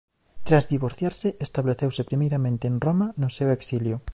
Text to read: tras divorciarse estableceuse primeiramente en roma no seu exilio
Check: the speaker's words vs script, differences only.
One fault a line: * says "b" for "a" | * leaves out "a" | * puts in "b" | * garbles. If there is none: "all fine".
all fine